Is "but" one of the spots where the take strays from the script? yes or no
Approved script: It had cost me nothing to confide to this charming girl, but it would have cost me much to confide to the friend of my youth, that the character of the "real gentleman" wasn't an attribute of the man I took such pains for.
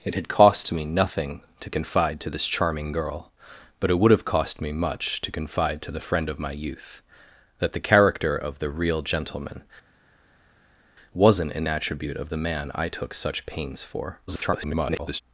no